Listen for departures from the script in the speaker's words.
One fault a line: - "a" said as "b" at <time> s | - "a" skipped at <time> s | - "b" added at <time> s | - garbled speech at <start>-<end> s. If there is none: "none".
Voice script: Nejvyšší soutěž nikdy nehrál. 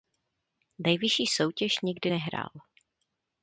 none